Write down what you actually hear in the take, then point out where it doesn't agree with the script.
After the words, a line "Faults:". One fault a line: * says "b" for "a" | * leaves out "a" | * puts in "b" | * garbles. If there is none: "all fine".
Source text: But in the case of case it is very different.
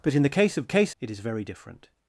But in the case of case it is very different.
Faults:
all fine